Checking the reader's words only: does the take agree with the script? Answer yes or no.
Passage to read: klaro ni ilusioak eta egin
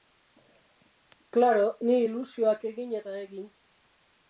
no